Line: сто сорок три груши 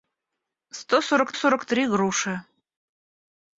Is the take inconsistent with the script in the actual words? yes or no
yes